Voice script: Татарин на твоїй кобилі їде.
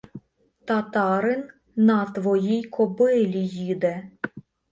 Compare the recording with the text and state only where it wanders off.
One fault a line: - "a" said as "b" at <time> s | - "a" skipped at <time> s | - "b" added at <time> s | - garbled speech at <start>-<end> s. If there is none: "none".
none